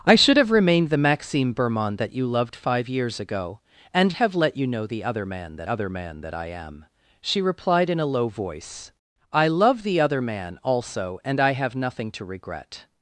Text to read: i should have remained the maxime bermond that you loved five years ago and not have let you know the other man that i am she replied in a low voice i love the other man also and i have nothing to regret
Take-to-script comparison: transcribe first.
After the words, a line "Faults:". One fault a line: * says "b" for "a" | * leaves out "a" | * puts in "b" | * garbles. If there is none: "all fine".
i should have remained the maxime bermond that you loved five years ago and have let you know the other man that other man that i am she replied in a low voice i love the other man also and i have nothing to regret
Faults:
* leaves out "not"
* puts in "other man that"